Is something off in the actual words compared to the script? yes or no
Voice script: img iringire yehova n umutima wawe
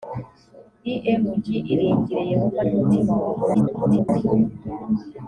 yes